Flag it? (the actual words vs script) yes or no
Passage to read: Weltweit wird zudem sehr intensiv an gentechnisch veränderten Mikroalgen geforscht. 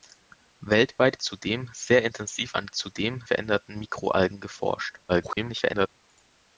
yes